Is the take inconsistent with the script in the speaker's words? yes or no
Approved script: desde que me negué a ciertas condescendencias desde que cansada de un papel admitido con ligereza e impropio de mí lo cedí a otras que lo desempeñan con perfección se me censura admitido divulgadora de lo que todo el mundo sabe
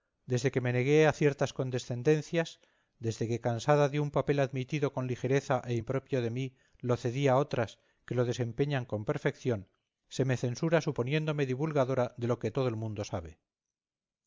yes